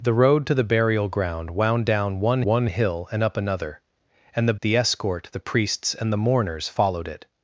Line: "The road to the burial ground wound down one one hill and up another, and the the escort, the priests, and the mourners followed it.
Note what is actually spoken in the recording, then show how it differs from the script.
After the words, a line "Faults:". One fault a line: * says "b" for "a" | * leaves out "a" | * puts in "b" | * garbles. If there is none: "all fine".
"The road to the burial ground wound down one one hill and up another, and the the escort, the priests, and the mourners followed it.
Faults:
all fine